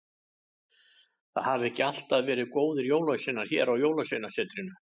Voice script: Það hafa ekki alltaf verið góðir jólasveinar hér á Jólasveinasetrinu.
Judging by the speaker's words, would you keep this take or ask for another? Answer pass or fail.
pass